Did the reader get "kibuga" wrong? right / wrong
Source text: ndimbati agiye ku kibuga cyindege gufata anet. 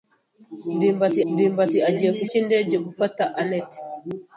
wrong